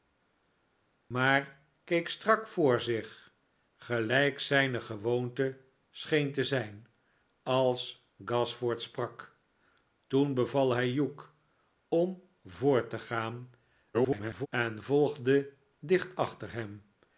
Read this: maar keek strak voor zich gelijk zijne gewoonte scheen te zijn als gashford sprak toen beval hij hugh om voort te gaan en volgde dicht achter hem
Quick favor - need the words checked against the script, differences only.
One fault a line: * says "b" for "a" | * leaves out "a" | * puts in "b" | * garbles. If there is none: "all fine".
* garbles